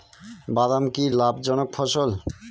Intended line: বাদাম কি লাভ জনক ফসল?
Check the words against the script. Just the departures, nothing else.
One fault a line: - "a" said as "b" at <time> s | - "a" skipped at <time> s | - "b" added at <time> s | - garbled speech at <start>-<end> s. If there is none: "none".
none